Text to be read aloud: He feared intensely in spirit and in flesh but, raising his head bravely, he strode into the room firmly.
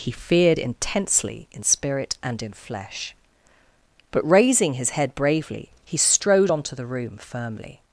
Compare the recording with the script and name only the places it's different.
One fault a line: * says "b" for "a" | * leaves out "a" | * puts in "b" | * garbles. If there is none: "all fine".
* says "onto" for "into"